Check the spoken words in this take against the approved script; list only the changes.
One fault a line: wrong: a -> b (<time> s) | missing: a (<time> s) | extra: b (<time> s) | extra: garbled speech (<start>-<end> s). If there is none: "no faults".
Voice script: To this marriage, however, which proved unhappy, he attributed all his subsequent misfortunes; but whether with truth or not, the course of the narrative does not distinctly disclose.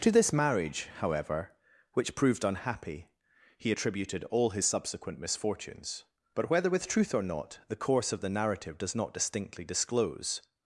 no faults